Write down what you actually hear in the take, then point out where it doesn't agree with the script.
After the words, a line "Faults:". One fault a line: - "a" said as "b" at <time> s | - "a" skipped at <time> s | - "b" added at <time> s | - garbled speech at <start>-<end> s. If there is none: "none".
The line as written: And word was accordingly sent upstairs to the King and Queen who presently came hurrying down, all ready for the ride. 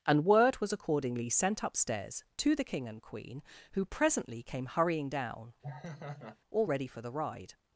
And word was accordingly sent upstairs to the King and Queen who presently came hurrying down, all ready for the ride.
Faults:
none